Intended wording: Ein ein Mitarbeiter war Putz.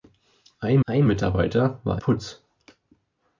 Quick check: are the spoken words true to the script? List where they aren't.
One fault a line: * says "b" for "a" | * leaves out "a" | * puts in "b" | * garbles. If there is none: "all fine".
all fine